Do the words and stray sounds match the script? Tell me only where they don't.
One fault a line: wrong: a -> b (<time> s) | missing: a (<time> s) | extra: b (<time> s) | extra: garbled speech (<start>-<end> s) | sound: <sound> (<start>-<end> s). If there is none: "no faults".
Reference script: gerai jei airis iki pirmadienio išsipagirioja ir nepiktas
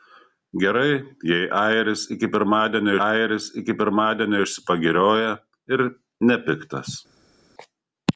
extra: airis iki pirmadienio (3.1 s)